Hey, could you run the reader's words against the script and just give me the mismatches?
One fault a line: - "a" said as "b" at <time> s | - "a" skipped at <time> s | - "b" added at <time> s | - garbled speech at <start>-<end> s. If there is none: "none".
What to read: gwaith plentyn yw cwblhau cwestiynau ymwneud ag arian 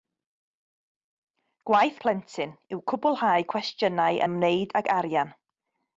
none